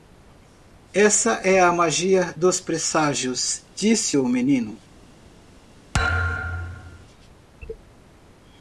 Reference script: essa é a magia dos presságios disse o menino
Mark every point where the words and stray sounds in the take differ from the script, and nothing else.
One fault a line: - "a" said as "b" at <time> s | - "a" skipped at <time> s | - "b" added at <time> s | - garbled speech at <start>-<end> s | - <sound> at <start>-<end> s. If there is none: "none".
- thud at 5.9-7.1 s